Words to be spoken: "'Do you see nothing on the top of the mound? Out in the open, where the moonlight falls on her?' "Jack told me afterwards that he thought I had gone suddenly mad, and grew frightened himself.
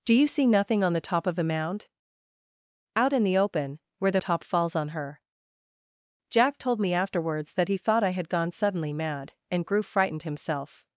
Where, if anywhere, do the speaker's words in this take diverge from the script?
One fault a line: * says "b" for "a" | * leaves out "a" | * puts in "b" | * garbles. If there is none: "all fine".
* says "top" for "moonlight"